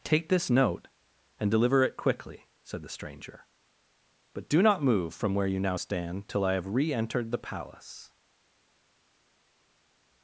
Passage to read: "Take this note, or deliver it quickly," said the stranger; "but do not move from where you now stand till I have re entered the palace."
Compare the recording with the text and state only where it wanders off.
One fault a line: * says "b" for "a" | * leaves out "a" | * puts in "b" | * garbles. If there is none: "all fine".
* says "and" for "or"